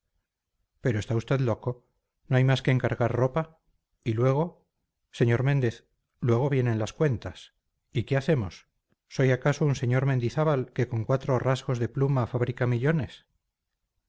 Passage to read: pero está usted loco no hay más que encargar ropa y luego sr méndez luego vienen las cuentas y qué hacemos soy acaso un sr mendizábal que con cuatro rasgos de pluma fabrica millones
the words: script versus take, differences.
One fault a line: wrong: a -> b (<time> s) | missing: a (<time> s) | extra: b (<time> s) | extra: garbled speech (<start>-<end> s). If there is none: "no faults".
no faults